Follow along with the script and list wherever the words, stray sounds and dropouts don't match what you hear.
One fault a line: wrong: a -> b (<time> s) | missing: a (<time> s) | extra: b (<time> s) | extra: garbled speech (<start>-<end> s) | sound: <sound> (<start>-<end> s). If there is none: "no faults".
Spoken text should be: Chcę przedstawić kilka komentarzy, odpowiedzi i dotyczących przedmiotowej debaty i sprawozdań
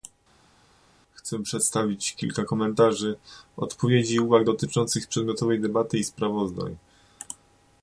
extra: uwag (4.2 s)